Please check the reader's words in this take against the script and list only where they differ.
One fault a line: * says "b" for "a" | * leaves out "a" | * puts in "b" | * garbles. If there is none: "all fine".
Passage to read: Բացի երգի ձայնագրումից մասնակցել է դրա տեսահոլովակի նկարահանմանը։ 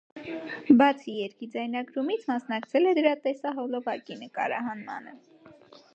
all fine